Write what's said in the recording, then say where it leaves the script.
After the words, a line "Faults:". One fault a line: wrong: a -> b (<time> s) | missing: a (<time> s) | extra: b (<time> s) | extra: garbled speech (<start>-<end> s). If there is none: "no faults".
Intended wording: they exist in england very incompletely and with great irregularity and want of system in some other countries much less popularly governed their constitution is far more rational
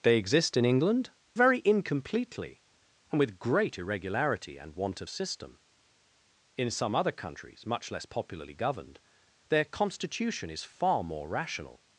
they exist in england very incompletely and with great irregularity and want of system in some other countries much less popularly governed their constitution is far more rational
Faults:
no faults